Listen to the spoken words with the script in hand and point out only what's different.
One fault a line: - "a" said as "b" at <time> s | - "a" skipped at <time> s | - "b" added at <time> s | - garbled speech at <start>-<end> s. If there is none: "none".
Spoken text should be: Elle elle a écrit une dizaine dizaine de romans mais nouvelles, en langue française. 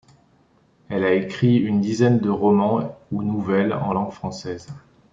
- "elle" skipped at 1.0 s
- "dizaine" skipped at 2.2 s
- "mais" said as "ou" at 3.1 s